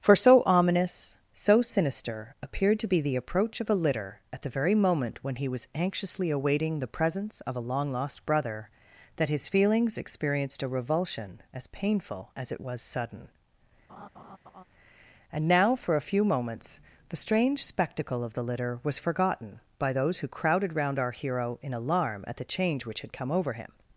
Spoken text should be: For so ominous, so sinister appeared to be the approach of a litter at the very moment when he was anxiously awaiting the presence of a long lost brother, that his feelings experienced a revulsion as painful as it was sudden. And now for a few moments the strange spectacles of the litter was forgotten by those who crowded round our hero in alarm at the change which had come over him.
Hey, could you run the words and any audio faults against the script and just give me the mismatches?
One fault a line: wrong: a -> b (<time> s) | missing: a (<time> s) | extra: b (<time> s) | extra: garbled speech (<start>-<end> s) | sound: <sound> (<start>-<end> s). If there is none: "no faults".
sound: laugh (13.9-14.6 s)
wrong: spectacles -> spectacle (17.6 s)